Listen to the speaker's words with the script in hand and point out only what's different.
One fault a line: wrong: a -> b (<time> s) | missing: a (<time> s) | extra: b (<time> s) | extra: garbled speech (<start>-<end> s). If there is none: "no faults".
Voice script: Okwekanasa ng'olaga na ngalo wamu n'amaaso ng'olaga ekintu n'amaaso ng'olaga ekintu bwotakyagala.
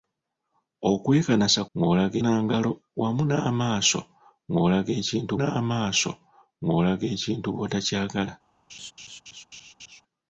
no faults